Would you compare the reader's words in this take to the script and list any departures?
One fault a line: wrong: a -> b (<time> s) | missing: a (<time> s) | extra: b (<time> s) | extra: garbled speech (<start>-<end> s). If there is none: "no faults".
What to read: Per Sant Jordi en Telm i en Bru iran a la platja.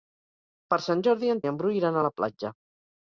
missing: Telm (1.4 s)